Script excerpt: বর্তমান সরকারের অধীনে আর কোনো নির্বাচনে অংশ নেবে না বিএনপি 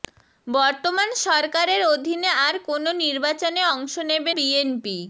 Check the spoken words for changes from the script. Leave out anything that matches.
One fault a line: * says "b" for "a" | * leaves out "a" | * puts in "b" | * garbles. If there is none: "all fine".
* leaves out "না"